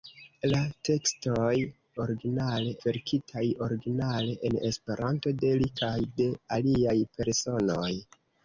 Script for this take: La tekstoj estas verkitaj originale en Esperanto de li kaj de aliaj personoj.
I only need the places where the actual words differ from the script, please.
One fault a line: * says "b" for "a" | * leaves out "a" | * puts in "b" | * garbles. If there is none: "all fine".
* says "originale" for "estas"